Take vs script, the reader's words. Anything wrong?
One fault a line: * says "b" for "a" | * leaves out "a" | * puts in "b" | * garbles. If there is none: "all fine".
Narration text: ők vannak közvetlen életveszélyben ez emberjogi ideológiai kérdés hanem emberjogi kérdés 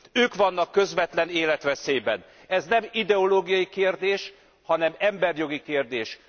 * says "nem" for "emberjogi"